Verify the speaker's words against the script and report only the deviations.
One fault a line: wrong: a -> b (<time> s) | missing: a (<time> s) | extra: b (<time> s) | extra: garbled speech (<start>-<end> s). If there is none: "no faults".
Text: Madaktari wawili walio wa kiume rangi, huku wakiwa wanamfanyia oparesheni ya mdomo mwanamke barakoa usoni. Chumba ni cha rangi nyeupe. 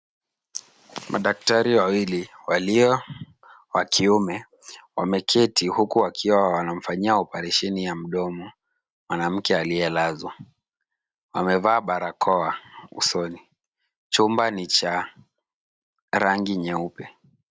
wrong: rangi -> wameketi (5.0 s)
extra: aliyelazwa Wamevaa (9.6 s)